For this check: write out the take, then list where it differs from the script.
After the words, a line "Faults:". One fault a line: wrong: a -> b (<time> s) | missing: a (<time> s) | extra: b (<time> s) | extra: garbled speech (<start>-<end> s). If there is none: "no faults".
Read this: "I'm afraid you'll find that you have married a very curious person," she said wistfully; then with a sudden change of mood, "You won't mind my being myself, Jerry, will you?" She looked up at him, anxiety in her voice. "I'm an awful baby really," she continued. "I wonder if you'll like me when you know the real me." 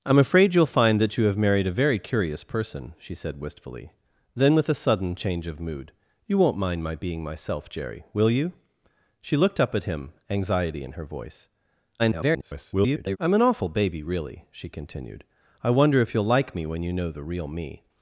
"I'm afraid you'll find that you have married a very curious person," she said wistfully; then with a sudden change of mood, "You won't mind my being myself, Jerry, will you?" She looked up at him, anxiety in her voice. [garbled] "I'm an awful baby really," she continued. "I wonder if you'll like me when you know the real me."
Faults:
extra: garbled speech (12.0-13.2 s)